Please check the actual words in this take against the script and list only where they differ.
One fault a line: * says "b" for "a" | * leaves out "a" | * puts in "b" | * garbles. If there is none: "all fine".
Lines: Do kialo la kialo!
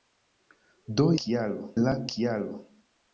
all fine